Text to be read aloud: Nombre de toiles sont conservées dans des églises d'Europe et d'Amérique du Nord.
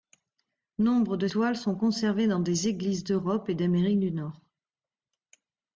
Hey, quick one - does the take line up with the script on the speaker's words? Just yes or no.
yes